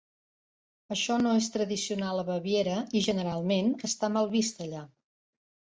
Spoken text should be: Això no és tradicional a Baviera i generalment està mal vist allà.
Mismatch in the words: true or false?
false